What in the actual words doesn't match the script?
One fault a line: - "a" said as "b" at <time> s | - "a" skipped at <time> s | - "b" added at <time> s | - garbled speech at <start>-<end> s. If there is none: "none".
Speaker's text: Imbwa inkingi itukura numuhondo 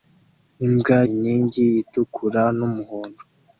none